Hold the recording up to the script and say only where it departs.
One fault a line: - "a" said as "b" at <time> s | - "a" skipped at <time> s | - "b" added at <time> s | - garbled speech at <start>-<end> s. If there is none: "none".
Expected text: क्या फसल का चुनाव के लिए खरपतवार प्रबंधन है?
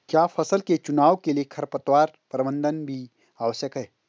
- "का" said as "के" at 0.6 s
- "भी आवश्यक" added at 2.9 s